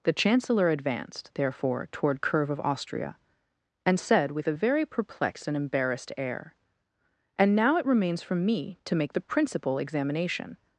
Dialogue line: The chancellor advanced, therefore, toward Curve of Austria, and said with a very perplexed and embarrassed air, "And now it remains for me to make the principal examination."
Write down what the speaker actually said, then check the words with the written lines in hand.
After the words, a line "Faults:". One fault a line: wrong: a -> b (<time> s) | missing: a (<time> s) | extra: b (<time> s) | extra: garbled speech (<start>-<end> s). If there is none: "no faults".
The chancellor advanced, therefore, toward Curve of Austria, and said with a very perplexed and embarrassed air, "And now it remains for me to make the principal examination."
Faults:
no faults